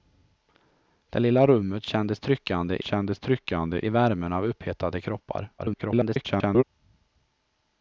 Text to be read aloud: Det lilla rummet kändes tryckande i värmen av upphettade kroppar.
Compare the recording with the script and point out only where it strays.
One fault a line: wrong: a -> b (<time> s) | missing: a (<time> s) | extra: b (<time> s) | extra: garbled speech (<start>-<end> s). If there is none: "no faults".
extra: kändes tryckande (2.8 s)
extra: garbled speech (5.6-6.6 s)